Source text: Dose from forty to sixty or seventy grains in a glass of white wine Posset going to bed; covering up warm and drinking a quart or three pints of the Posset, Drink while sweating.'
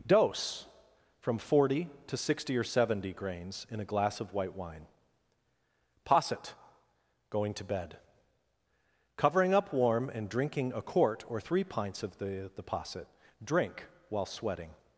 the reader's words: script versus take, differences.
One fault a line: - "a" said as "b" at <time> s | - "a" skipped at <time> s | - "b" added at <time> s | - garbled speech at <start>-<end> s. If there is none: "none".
- "the" added at 12.5 s